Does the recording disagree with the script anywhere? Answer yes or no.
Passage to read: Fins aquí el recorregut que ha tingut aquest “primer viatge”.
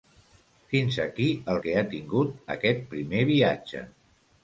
yes